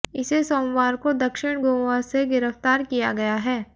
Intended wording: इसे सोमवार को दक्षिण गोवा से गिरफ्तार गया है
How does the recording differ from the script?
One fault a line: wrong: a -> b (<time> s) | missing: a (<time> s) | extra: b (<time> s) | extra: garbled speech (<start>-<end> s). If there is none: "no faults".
extra: किया (2.8 s)